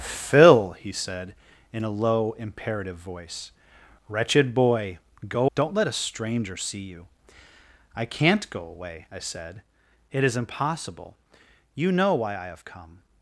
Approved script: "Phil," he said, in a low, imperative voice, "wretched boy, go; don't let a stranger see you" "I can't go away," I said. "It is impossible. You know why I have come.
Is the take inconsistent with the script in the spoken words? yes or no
no